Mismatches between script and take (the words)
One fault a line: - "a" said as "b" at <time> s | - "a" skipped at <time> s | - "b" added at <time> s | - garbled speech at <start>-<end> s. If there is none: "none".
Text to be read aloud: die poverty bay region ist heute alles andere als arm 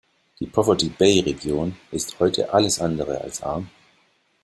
none